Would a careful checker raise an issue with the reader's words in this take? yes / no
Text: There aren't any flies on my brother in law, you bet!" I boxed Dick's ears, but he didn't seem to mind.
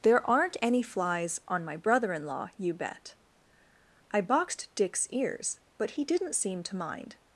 no